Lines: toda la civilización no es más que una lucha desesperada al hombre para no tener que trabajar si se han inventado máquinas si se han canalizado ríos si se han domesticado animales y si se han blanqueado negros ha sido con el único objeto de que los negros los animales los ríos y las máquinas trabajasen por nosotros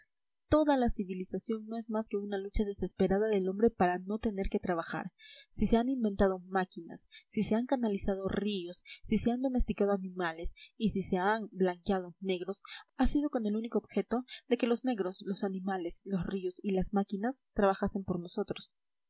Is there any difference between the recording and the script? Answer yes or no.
yes